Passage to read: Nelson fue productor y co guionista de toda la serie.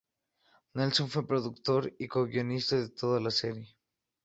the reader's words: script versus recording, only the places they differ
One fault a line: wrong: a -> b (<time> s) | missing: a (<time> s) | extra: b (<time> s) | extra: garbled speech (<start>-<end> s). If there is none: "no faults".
no faults